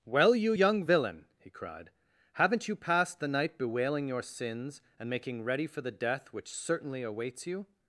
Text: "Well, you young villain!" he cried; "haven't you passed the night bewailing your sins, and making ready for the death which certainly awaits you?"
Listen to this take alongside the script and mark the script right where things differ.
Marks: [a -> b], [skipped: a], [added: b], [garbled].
"Well, you young villain!" he cried; "haven't you passed the night bewailing your sins, and making ready for the death which certainly awaits you?"